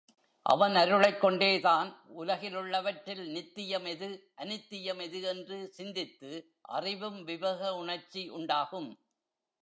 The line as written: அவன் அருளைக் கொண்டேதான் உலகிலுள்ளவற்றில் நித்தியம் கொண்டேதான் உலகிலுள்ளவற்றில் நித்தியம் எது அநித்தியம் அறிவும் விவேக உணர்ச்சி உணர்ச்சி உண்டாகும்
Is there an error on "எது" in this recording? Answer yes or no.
yes